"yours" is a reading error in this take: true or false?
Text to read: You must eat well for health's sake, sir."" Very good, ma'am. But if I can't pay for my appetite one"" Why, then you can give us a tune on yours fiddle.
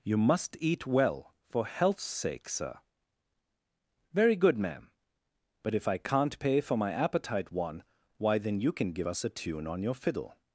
true